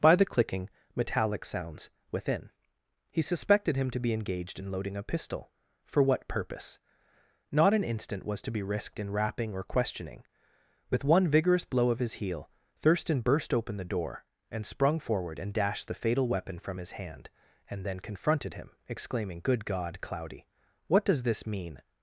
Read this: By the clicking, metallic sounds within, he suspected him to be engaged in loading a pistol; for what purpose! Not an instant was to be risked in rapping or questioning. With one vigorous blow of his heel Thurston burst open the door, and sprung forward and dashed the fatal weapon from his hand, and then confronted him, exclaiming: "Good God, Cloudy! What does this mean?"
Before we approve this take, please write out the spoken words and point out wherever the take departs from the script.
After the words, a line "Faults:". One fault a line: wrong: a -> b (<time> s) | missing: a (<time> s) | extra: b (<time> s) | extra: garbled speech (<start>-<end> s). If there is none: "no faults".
By the clicking, metallic sounds within, he suspected him to be engaged in loading a pistol; for what purpose! Not an instant was to be risked in rapping or questioning. With one vigorous blow of his heel Thurston burst open the door, and sprung forward and dashed the fatal weapon from his hand, and then confronted him, exclaiming: "Good God, Cloudy! What does this mean?"
Faults:
no faults